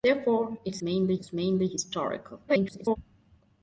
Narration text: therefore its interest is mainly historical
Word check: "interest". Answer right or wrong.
wrong